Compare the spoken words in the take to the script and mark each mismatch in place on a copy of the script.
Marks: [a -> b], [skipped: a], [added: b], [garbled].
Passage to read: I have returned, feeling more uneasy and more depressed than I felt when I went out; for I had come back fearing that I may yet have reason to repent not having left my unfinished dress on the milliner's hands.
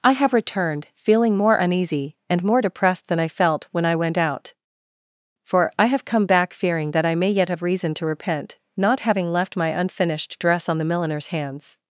I have returned, feeling more uneasy and more depressed than I felt when I went out; for I [had -> have] come back fearing that I may yet have reason to repent not having left my unfinished dress on the milliner's hands.